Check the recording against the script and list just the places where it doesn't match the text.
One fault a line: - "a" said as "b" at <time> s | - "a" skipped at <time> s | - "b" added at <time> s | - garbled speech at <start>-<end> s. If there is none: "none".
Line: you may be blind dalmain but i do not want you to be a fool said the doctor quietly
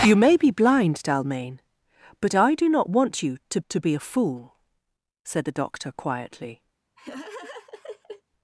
- "to" added at 3.7 s